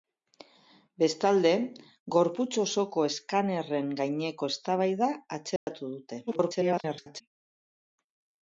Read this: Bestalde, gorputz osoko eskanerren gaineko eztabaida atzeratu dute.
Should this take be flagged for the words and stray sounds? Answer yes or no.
yes